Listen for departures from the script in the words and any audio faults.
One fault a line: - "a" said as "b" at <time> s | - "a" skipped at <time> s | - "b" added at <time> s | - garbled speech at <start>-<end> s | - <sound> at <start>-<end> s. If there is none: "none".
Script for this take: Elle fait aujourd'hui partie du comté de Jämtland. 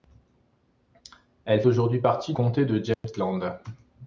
- "fait" skipped at 1.6 s
- "du" skipped at 2.3 s
- dropout at 2.9-3.0 s